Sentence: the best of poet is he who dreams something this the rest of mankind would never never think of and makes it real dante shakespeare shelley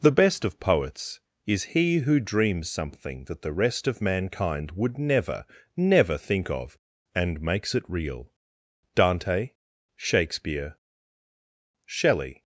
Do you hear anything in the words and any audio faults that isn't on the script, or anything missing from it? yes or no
yes